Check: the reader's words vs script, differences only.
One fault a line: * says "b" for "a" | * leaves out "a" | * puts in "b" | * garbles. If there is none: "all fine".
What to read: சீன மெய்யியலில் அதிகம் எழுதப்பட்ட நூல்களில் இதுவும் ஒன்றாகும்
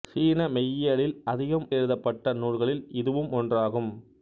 all fine